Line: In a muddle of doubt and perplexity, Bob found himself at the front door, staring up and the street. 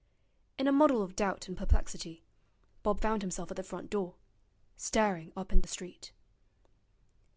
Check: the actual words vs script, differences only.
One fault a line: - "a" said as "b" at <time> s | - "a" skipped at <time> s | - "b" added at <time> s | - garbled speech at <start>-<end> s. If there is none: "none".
none